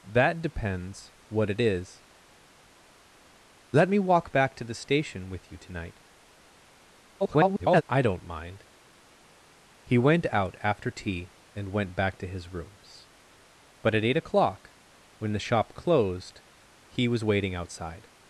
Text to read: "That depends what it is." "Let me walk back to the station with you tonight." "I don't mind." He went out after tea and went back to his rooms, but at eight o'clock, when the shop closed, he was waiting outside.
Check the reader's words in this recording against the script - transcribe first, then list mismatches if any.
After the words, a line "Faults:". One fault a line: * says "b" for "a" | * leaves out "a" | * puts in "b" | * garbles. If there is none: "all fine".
"That depends what it is." "Let me walk back to the station with you tonight." [garbled] "I don't mind." He went out after tea and went back to his rooms, but at eight o'clock, when the shop closed, he was waiting outside.
Faults:
* garbles